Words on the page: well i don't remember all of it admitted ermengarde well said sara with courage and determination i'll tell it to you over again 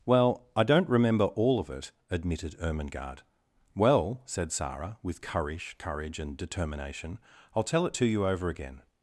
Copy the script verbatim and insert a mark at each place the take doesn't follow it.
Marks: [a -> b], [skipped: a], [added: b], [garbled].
well i don't remember all of it admitted ermengarde well said sara with courage [added: courage] and determination i'll tell it to you over again